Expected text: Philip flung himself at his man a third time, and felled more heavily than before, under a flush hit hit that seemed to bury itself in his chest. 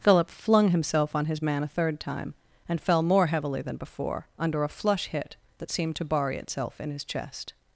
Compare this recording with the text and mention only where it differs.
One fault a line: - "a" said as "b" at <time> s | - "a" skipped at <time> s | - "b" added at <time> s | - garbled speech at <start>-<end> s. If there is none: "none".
- "at" said as "on" at 1.1 s
- "felled" said as "fell" at 2.8 s
- "hit" skipped at 5.4 s